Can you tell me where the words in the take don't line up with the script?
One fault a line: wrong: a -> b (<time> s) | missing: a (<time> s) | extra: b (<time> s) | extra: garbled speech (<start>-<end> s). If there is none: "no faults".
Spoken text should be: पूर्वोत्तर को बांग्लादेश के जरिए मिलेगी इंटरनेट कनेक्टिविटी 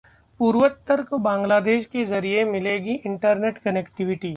no faults